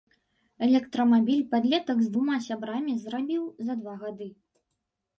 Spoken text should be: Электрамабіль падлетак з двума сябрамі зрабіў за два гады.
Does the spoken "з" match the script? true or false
true